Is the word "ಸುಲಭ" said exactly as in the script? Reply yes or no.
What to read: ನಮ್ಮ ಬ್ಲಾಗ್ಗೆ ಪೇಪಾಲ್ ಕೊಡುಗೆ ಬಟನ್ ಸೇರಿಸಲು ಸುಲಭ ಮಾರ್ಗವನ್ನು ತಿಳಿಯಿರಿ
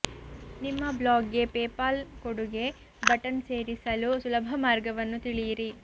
yes